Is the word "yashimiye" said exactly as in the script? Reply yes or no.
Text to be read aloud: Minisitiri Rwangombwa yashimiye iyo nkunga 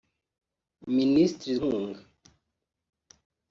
no